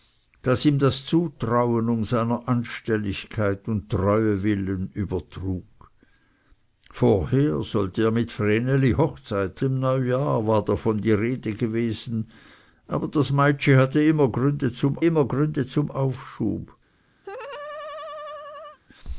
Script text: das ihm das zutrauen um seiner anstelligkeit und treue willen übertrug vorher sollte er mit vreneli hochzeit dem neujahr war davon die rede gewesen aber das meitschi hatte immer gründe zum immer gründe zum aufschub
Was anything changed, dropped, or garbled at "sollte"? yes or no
no